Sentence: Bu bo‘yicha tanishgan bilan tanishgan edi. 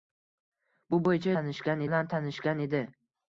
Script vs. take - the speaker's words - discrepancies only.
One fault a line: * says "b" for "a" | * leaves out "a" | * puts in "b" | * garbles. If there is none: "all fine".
all fine